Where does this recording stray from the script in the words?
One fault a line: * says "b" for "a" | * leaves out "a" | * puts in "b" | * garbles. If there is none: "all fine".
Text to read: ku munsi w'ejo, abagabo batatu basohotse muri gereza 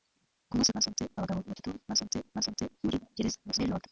* says "basohotse" for "w'ejo"
* puts in "basohotse"
* garbles